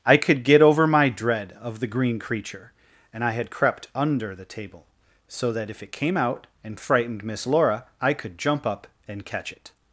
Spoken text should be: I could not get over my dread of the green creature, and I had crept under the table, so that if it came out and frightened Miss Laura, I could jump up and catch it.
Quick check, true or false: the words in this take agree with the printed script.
false